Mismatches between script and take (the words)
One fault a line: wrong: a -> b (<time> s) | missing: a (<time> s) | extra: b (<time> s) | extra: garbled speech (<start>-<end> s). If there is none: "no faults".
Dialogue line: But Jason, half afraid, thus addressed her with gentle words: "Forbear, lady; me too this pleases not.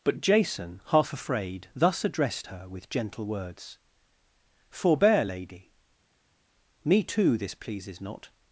no faults